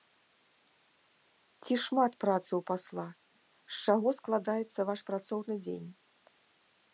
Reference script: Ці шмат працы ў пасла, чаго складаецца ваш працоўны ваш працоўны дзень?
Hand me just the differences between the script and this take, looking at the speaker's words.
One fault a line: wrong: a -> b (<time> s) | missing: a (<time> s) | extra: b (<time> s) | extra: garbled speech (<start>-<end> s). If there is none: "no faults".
extra: з (3.8 s)
missing: ваш працоўны (5.5 s)